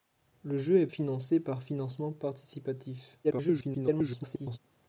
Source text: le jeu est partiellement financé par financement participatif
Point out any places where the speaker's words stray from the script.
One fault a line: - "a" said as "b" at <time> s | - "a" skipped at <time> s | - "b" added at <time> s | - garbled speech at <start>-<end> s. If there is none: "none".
- "partiellement" skipped at 0.9 s
- garbled speech at 3.2-4.6 s